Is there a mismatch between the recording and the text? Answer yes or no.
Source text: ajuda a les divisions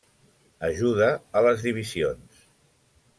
no